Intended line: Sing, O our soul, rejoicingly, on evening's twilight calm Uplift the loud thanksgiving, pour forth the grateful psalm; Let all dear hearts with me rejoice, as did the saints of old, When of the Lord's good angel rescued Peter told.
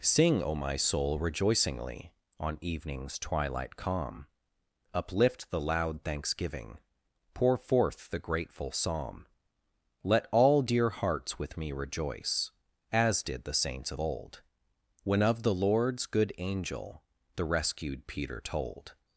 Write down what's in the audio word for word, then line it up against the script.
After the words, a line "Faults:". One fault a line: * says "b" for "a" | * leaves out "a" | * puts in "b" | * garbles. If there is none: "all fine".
Sing, O my soul, rejoicingly, on evening's twilight calm Uplift the loud thanksgiving, pour forth the grateful psalm; Let all dear hearts with me rejoice, as did the saints of old, When of the Lord's good angel the rescued Peter told.
Faults:
* says "my" for "our"
* puts in "the"